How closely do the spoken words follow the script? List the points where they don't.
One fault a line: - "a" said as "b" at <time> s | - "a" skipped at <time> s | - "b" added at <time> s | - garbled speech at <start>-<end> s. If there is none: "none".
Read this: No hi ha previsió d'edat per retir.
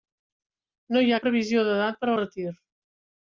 none